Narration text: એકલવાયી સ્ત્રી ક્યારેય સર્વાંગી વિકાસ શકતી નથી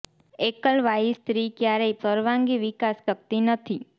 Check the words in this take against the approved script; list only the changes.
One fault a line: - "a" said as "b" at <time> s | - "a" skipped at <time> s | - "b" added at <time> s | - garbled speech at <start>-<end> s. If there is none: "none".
none